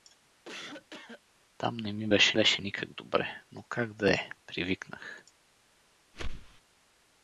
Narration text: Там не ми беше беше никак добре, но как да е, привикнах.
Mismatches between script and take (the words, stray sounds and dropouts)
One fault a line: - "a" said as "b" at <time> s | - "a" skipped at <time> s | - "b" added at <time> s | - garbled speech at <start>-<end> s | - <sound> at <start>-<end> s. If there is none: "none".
- cough at 0.5-1.2 s
- whoosh at 6.1-6.6 s